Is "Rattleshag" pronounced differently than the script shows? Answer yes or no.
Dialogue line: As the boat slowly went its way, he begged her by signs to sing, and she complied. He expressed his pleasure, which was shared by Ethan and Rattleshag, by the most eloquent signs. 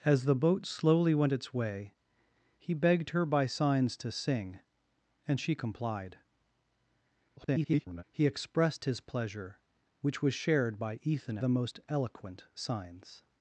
yes